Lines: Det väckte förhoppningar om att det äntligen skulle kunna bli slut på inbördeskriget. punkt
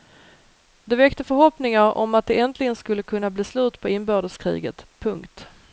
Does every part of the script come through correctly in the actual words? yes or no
yes